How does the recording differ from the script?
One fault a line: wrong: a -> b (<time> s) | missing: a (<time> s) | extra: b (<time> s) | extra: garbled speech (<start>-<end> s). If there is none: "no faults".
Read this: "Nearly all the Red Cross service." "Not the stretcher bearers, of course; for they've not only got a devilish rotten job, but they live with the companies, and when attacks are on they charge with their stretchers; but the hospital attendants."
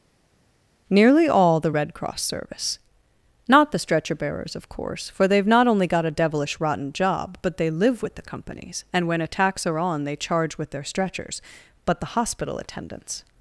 no faults